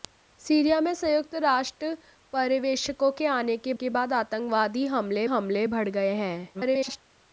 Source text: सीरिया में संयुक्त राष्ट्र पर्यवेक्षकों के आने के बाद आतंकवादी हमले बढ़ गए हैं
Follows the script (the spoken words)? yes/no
no